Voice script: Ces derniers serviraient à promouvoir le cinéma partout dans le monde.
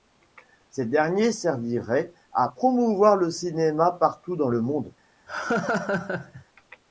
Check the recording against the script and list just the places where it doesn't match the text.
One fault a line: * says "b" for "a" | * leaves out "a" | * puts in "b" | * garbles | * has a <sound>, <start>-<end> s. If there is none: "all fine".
* has a laugh, 5.3-6.4 s